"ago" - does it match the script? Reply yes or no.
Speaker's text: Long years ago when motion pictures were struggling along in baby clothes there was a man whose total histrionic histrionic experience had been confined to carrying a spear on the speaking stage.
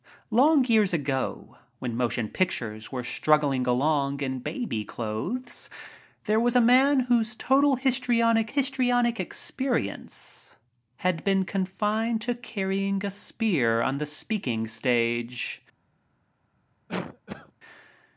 yes